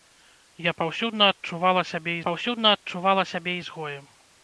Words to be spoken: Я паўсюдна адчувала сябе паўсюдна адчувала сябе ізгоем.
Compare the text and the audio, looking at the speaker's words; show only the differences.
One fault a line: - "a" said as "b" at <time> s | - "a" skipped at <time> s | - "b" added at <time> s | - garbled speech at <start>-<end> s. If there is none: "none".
none